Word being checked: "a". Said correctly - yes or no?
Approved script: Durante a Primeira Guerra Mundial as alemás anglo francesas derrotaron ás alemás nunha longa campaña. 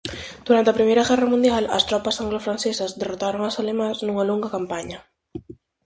yes